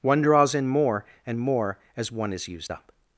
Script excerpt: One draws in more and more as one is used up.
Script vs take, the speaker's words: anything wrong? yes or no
no